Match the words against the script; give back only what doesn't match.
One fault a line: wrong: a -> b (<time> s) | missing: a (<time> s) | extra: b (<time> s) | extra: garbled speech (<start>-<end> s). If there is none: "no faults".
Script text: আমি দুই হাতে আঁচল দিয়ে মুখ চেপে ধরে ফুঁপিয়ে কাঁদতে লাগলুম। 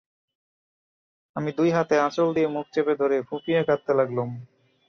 no faults